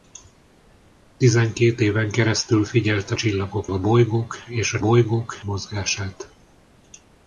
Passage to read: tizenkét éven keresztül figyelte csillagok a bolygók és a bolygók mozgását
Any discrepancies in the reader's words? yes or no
no